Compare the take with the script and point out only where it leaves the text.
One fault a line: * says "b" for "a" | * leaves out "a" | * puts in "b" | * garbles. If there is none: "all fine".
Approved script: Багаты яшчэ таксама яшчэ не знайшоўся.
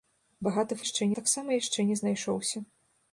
all fine